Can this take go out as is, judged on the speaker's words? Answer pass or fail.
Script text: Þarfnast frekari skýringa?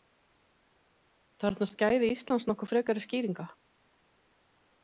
fail